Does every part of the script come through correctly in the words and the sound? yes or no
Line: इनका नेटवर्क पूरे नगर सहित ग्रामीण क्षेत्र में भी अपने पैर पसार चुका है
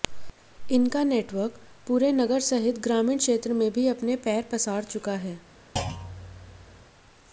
no